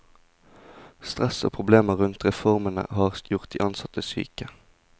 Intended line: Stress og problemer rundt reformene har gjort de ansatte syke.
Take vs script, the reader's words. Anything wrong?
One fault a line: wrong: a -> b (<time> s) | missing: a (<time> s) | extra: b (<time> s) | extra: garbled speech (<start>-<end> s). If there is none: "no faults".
no faults